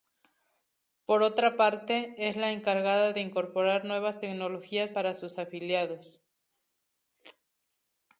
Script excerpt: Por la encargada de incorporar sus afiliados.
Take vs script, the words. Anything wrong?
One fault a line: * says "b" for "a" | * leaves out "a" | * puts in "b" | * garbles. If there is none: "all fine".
* puts in "otra parte es"
* puts in "nuevas tecnologías para"